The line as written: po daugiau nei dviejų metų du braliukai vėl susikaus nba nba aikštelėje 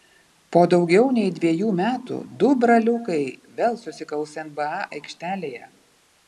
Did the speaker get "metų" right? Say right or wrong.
right